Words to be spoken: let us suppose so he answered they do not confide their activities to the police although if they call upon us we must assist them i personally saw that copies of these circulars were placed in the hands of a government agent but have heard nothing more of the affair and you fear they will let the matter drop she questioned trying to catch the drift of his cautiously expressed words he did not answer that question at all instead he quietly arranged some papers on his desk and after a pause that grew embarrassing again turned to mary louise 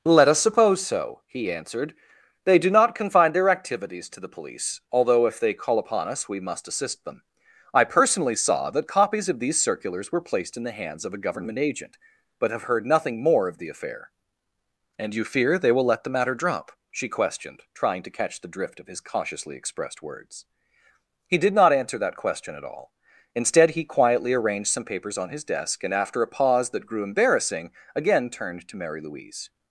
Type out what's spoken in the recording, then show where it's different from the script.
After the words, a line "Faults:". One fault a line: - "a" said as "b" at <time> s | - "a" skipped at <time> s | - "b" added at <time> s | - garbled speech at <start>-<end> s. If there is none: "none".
let us suppose so he answered they do not confine their activities to the police although if they call upon us we must assist them i personally saw that copies of these circulars were placed in the hands of a government agent but have heard nothing more of the affair and you fear they will let the matter drop she questioned trying to catch the drift of his cautiously expressed words he did not answer that question at all instead he quietly arranged some papers on his desk and after a pause that grew embarrassing again turned to mary louise
Faults:
- "confide" said as "confine" at 3.0 s